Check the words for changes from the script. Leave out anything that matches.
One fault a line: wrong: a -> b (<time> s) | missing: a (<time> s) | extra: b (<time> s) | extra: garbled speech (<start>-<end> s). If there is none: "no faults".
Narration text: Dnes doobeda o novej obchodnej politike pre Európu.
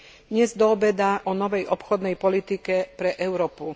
no faults